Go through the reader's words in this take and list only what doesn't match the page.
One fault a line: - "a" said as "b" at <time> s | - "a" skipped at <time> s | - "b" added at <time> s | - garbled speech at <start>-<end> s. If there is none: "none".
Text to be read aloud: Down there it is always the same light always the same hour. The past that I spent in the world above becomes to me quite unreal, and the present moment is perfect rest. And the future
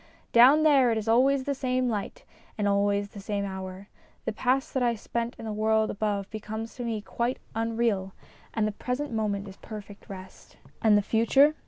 - "and" added at 2.6 s